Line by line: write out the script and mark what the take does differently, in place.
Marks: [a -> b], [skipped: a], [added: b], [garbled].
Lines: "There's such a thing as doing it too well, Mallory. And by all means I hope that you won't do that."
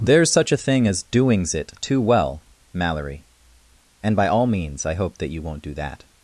"There's such a thing as [doing -> doings] it too well, Mallory. And by all means I hope that you won't do that."